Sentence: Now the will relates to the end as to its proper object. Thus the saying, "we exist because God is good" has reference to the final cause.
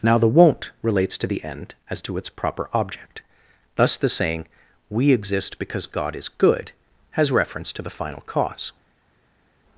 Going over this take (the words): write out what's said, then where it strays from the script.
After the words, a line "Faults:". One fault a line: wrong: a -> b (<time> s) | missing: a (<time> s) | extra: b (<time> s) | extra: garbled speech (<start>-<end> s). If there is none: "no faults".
Now the won't relates to the end as to its proper object. Thus the saying, "we exist because God is good" has reference to the final cause.
Faults:
wrong: will -> won't (0.3 s)